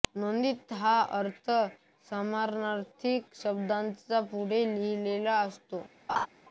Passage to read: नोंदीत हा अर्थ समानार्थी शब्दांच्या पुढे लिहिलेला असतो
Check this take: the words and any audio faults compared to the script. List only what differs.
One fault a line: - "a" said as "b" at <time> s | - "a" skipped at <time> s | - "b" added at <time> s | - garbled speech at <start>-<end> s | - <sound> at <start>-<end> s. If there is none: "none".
- laugh at 6.1-6.3 s